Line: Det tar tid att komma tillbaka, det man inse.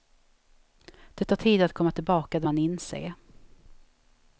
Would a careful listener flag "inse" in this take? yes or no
no